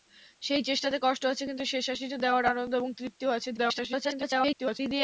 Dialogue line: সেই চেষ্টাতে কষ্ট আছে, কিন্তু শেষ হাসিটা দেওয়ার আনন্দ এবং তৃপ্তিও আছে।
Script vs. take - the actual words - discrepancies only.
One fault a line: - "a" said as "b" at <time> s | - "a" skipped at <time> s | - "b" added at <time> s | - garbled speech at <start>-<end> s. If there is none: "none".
- garbled speech at 3.6-4.8 s